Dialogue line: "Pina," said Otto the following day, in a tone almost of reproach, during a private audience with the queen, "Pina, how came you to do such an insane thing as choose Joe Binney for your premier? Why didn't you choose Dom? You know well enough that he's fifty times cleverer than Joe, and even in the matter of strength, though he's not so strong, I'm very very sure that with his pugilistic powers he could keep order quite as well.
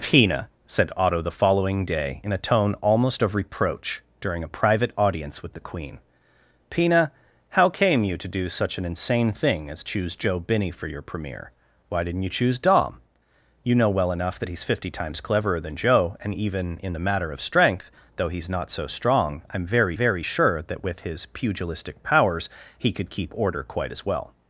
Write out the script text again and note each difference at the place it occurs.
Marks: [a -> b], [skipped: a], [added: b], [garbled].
"Pina," said Otto the following day, in a tone almost of reproach, during a private audience with the queen, "Pina, how came you to do such an insane thing as choose Joe Binney for your premier? Why didn't you choose Dom? You know well enough that he's fifty times cleverer than Joe, and even in the matter of strength, though he's not so strong, I'm very very sure that with his pugilistic powers he could keep order quite as well.